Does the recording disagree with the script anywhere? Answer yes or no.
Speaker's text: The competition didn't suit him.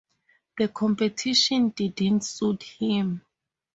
no